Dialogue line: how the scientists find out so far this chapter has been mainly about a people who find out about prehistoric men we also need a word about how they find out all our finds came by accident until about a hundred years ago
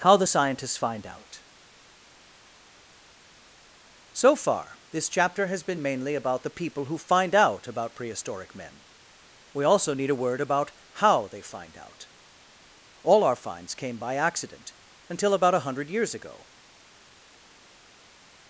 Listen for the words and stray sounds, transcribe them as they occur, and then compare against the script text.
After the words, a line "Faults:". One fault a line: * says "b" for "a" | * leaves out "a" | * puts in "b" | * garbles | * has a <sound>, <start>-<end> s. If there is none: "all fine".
how the scientists find out so far this chapter has been mainly about the people who find out about prehistoric men we also need a word about how they find out all our finds came by accident until about a hundred years ago
Faults:
* says "the" for "a"